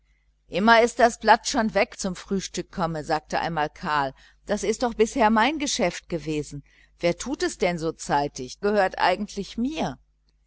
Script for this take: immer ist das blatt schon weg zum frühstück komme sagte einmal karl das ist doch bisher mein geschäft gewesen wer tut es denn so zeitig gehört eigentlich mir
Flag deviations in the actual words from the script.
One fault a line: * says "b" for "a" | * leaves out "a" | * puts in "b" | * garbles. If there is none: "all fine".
all fine